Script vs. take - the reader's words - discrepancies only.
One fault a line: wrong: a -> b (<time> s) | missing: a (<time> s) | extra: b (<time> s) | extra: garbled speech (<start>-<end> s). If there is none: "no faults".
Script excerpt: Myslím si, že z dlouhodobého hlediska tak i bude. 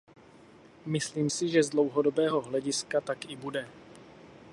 no faults